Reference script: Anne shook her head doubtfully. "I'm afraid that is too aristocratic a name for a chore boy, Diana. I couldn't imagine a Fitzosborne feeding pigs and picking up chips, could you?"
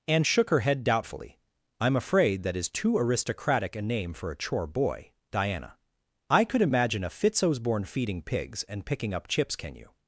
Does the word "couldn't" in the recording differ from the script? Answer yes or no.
yes